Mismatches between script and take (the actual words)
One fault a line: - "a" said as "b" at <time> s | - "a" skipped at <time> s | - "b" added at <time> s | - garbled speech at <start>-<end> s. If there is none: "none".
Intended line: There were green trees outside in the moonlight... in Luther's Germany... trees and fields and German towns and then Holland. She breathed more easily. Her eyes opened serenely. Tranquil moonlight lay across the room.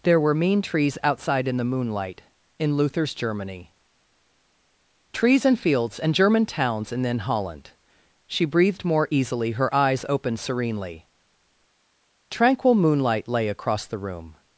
- "green" said as "mean" at 0.3 s